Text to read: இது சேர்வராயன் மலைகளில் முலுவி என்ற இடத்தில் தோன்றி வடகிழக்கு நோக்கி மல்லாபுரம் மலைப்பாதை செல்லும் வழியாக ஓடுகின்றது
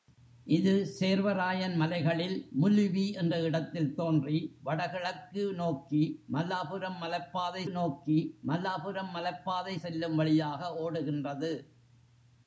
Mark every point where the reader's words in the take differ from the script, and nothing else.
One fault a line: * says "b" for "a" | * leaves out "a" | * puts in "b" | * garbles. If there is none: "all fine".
* puts in "நோக்கி மல்லாபுரம் மலைப்பாதை"